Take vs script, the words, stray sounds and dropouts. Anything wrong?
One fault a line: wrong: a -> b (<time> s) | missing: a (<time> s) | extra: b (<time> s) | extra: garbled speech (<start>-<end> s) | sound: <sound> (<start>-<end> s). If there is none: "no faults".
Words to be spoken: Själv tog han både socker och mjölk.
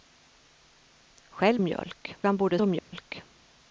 wrong: tog -> mjölk (1.6 s)
missing: socker (2.6 s)
sound: dropout (2.8-2.9 s)